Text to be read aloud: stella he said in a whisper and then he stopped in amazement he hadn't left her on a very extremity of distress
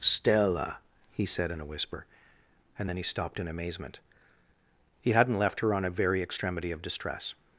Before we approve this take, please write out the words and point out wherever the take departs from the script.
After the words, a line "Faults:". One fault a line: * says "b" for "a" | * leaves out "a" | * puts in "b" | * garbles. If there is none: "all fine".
stella he said in a whisper and then he stopped in amazement he hadn't left her on a very extremity of distress
Faults:
all fine